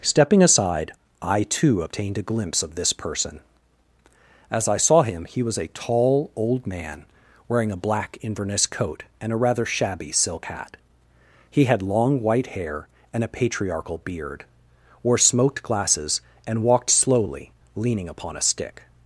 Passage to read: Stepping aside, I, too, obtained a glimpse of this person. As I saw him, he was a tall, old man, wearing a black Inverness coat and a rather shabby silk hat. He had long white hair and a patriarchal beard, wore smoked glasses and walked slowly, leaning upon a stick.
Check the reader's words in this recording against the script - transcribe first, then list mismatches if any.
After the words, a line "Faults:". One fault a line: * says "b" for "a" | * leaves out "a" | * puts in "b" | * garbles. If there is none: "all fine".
Stepping aside, I, too, obtained a glimpse of this person. As I saw him, he was a tall, old man, wearing a black Inverness coat and a rather shabby silk hat. He had long white hair and a patriarchal beard, wore smoked glasses and walked slowly, leaning upon a stick.
Faults:
all fine